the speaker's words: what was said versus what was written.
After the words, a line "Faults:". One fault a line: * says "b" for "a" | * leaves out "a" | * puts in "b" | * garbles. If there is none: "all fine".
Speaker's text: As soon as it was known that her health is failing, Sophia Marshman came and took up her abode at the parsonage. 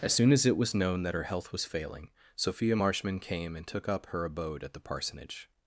As soon as it was known that her health was failing, Sophia Marshman came and took up her abode at the parsonage.
Faults:
* says "was" for "is"